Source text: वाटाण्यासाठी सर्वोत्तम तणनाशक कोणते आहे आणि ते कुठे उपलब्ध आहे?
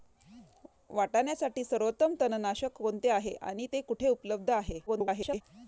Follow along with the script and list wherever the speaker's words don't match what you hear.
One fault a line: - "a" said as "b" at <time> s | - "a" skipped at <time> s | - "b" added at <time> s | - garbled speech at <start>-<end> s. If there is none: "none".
- garbled speech at 4.9-5.4 s